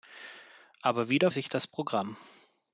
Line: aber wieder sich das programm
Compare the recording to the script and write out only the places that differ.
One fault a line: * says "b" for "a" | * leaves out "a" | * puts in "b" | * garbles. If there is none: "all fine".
all fine